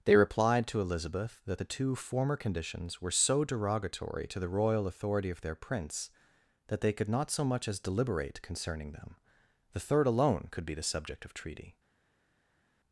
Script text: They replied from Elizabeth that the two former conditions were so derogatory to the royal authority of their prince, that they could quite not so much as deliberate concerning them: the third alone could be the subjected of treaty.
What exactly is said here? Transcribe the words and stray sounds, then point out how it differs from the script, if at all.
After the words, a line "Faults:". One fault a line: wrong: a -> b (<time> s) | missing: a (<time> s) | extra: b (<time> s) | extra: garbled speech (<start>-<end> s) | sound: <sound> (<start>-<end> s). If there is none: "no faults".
They replied to Elizabeth that the two former conditions were so derogatory to the royal authority of their prince, that they could not so much as deliberate concerning them: the third alone could be the subject of treaty.
Faults:
wrong: from -> to (0.7 s)
missing: quite (7.1 s)
wrong: subjected -> subject (10.8 s)